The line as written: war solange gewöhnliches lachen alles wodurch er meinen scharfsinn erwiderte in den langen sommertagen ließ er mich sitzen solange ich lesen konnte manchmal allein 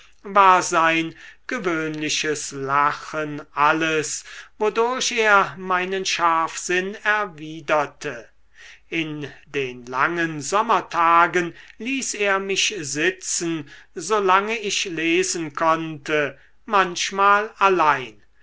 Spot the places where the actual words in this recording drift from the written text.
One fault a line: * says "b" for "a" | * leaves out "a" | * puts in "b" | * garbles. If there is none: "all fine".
* says "sein" for "solange"